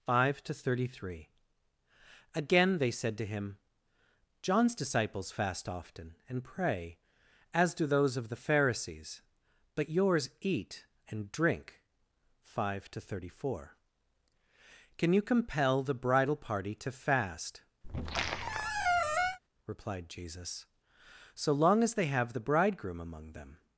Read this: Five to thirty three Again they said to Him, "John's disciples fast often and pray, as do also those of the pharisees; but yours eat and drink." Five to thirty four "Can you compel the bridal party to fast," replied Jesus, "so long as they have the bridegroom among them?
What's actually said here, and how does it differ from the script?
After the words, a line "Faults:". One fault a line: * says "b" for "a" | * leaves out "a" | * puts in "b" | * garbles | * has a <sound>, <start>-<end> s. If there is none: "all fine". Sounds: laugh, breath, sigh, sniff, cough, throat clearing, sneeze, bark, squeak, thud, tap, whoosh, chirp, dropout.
Five to thirty three Again they said to Him, "John's disciples fast often and pray, as do those of the pharisees; but yours eat and drink." Five to thirty four "Can you compel the bridal party to fast," replied Jesus, "so long as they have the bridegroom among them?
Faults:
* leaves out "also"
* has a squeak, 17.8-19.4 s